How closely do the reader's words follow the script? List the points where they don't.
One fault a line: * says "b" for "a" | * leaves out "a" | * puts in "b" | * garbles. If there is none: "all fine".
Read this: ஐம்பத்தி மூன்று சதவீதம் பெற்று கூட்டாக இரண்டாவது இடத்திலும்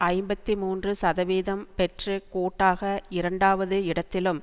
all fine